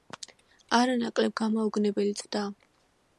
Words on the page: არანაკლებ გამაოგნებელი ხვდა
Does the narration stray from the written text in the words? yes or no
no